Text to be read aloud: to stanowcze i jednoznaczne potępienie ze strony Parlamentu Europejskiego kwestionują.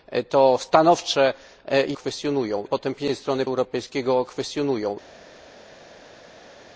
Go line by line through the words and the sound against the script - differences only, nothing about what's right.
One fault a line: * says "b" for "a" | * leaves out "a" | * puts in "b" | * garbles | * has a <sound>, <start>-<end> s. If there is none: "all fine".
* says "kwestionują" for "jednoznaczne"
* leaves out "Parlamentu"